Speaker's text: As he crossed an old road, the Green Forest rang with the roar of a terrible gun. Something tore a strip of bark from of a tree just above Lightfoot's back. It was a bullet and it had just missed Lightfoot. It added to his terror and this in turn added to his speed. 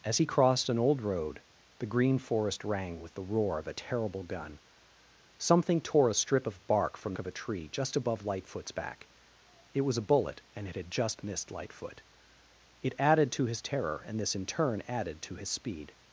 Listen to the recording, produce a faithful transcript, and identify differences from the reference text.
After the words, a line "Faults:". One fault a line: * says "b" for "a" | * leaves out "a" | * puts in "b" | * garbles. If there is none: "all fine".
As he crossed an old road, the Green Forest rang with the roar of a terrible gun. Something tore a strip of bark from of a tree just above Lightfoot's back. It was a bullet and it had just missed Lightfoot. It added to his terror and this in turn added to his speed.
Faults:
all fine